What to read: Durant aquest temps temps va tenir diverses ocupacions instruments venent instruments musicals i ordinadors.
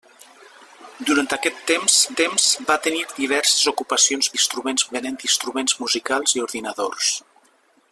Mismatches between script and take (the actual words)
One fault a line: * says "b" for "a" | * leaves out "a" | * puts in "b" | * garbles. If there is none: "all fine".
all fine